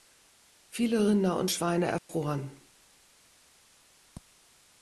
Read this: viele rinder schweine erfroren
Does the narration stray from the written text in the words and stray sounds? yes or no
yes